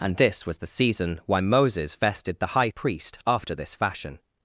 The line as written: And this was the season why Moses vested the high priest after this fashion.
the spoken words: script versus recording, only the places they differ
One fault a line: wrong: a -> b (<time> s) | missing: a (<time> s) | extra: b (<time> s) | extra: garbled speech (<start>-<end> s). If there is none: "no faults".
no faults